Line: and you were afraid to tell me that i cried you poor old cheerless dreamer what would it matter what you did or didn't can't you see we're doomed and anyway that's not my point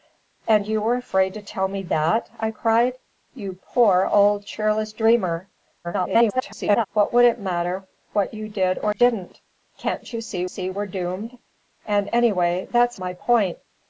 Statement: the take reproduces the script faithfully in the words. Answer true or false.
false